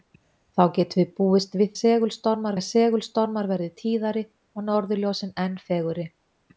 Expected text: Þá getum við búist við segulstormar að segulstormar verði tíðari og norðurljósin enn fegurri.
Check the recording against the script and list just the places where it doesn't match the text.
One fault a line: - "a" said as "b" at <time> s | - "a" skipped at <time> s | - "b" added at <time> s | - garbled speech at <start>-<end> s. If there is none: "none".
none